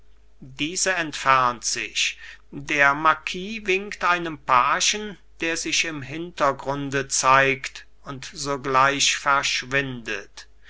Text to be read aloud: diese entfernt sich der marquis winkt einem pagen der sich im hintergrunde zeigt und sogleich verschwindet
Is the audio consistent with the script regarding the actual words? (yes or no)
yes